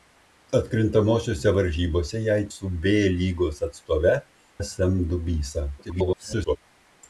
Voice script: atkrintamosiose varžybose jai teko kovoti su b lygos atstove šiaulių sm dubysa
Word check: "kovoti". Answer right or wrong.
wrong